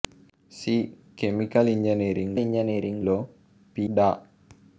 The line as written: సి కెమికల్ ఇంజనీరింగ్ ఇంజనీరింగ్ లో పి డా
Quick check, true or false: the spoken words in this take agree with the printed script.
true